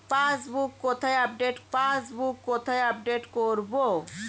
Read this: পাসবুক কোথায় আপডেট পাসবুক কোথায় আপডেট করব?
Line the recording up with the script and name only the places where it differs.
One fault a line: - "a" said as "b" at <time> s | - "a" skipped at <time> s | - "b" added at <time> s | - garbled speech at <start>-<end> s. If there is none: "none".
none